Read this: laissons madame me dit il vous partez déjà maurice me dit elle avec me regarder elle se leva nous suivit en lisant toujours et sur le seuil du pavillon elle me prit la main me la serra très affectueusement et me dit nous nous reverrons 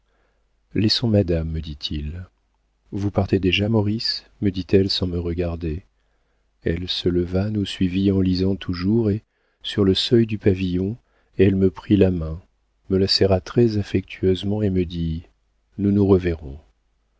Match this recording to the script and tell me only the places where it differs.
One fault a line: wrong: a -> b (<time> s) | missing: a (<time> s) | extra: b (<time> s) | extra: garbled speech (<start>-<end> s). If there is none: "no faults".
wrong: avec -> sans (4.9 s)